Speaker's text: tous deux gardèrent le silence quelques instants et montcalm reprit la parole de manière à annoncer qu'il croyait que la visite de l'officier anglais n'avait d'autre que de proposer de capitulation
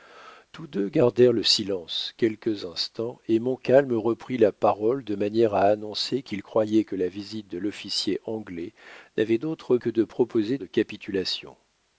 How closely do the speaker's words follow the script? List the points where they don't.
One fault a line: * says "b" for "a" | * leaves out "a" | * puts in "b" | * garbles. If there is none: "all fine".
all fine